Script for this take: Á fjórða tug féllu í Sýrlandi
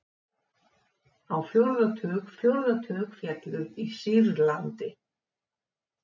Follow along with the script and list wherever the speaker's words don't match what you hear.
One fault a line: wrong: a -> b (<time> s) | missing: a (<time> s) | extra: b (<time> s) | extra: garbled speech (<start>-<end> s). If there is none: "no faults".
extra: fjórða tug (2.4 s)